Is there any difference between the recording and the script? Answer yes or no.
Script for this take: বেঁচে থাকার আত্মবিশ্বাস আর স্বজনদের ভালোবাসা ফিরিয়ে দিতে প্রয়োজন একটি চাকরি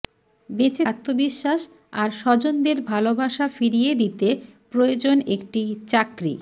yes